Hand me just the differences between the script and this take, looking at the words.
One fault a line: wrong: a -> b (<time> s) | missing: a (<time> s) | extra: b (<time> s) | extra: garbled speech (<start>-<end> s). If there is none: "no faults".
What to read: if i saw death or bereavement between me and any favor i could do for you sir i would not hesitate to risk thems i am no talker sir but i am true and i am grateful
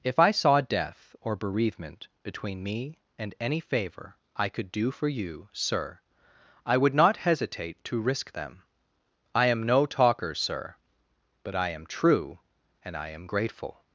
wrong: thems -> them (8.3 s)